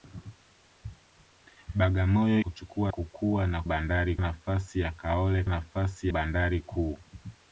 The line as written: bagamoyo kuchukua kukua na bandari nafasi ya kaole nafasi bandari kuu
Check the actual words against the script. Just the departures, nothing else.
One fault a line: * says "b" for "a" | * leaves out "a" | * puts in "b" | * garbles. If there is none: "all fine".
all fine